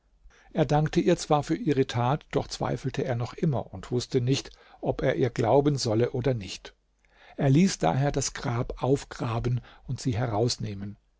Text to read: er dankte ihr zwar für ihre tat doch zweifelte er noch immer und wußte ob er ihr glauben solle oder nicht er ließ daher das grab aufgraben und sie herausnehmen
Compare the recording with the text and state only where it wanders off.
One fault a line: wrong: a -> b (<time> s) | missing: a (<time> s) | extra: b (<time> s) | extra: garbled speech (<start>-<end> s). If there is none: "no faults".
extra: nicht (4.2 s)